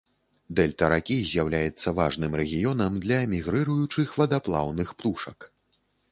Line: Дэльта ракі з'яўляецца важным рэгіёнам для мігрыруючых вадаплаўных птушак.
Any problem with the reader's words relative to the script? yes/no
no